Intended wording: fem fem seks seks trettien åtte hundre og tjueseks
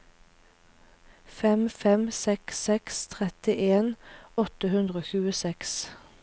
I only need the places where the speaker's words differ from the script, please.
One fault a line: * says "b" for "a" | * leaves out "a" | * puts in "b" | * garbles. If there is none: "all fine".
all fine